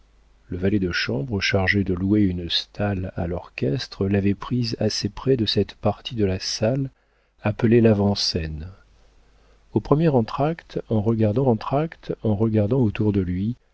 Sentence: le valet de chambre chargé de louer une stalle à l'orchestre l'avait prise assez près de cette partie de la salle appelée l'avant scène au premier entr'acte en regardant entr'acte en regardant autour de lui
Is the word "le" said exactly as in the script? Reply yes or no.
yes